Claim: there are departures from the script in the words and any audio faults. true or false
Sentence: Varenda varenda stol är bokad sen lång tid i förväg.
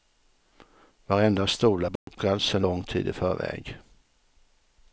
true